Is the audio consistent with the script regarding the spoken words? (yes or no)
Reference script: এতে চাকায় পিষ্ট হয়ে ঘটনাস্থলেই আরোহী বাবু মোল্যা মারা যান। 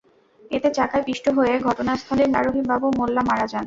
yes